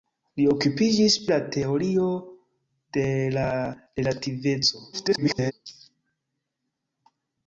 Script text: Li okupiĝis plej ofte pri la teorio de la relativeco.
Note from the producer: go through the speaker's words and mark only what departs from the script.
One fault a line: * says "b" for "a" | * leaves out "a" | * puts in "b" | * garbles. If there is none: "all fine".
* leaves out "plej ofte pri"
* garbles